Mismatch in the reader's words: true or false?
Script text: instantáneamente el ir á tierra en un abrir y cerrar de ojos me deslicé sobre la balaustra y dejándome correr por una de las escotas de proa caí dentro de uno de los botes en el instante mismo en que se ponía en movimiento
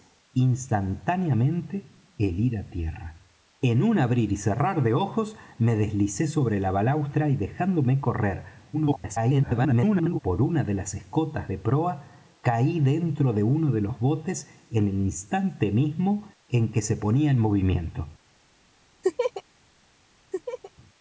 true